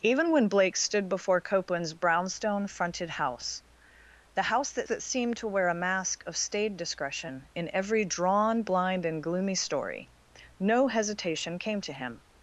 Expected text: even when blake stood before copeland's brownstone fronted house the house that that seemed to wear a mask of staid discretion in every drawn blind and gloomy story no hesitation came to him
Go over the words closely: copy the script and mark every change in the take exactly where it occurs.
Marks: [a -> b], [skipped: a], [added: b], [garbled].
even when blake stood before copeland's brownstone fronted house the house that that seemed to wear a mask of staid discretion in every drawn blind and gloomy story no hesitation came to him